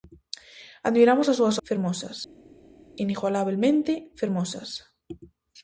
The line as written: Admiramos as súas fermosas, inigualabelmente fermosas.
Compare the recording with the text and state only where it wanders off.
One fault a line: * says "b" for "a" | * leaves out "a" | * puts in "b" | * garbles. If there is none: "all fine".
all fine